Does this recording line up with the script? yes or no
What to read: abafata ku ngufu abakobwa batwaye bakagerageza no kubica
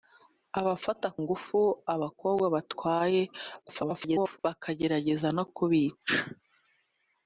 no